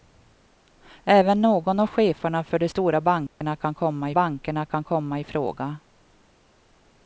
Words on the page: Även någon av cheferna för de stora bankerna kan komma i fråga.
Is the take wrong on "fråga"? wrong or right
right